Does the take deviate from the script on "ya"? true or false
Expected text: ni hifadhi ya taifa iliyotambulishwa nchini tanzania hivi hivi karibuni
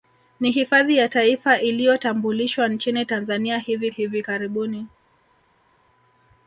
false